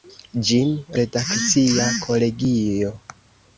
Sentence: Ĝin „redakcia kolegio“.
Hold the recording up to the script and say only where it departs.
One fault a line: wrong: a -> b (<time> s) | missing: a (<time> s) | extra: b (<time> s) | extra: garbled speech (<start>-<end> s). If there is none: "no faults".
no faults